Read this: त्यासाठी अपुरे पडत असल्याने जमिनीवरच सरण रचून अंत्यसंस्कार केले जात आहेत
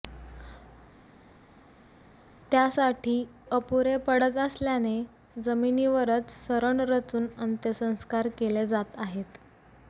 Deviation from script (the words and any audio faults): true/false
false